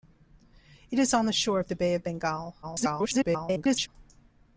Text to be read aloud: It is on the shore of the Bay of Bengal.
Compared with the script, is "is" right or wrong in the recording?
right